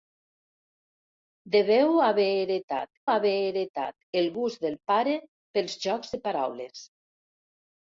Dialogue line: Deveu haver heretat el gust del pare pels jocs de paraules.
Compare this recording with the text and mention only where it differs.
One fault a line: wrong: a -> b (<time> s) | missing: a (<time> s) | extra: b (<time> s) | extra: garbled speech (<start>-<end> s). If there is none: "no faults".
extra: haver heretat (3.1 s)